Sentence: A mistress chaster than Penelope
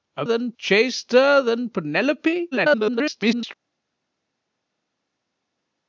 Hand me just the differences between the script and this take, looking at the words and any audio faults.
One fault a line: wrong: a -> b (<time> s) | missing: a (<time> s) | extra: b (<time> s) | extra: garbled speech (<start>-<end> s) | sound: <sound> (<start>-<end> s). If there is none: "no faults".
wrong: mistress -> than (0.2 s)
extra: garbled speech (2.5-3.5 s)